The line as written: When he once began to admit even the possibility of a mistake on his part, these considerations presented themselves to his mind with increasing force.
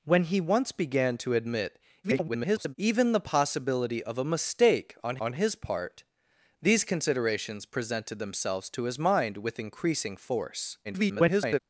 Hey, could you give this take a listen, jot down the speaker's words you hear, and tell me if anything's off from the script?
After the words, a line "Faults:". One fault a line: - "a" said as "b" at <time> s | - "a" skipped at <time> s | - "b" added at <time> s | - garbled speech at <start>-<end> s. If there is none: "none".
When he once began to admit [garbled] even the possibility of a mistake on on his part, these considerations presented themselves to his mind with increasing force. [garbled]
Faults:
- garbled speech at 2.0-2.8 s
- "on" added at 5.2 s
- garbled speech at 10.8-11.6 s